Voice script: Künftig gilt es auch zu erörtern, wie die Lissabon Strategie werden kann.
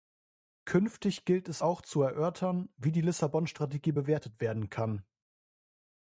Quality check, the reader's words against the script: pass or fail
fail